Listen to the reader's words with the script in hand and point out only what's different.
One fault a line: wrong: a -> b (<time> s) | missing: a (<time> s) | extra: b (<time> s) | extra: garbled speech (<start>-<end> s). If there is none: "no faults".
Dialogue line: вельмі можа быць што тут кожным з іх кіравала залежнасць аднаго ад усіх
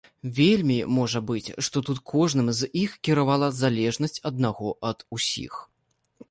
no faults